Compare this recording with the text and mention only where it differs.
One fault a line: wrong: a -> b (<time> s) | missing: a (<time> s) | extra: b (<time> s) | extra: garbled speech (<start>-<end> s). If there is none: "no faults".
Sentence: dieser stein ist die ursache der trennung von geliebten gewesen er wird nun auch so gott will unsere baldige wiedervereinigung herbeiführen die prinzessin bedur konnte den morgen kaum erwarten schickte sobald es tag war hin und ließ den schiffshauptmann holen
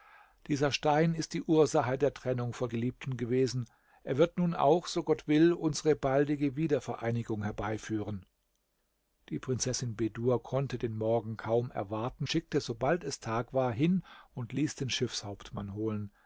no faults